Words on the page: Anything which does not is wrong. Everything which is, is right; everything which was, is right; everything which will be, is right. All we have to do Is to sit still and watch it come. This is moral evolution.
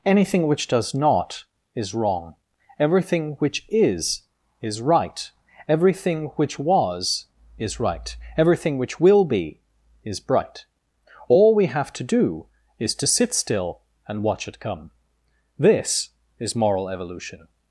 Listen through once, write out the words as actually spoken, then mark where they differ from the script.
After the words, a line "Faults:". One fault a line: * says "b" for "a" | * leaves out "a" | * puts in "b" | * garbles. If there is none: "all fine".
Anything which does not is wrong. Everything which is, is right; everything which was, is right; everything which will be, is bright. All we have to do Is to sit still and watch it come. This is moral evolution.
Faults:
* says "bright" for "right"